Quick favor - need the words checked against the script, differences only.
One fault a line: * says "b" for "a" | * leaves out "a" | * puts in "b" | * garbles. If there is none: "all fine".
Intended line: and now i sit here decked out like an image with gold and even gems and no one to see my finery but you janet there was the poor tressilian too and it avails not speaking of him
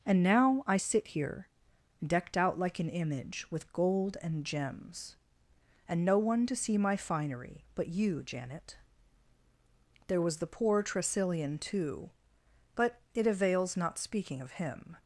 * leaves out "even"
* says "but" for "and"